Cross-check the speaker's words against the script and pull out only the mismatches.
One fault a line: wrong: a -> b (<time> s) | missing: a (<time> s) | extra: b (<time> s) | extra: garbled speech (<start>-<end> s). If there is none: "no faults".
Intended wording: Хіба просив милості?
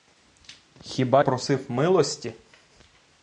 no faults